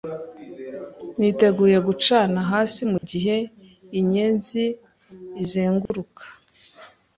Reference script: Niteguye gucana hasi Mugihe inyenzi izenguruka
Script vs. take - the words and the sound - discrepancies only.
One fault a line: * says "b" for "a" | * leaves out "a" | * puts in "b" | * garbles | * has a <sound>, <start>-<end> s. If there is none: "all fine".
* has a dropout, 3.0-3.0 s
* has a dropout, 5.9-5.9 s